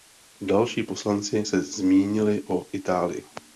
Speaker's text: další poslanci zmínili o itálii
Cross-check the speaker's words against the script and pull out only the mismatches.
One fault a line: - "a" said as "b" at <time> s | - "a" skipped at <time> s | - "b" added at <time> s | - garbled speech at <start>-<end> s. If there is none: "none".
- "se" added at 1.4 s